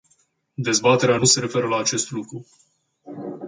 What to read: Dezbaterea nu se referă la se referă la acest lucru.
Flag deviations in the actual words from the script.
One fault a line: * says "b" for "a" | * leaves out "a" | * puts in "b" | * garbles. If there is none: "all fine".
* leaves out "se referă la"